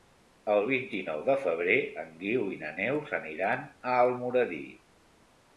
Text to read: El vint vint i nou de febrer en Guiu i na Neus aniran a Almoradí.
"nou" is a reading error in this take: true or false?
false